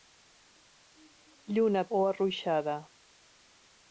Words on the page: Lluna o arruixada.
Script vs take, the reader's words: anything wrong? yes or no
no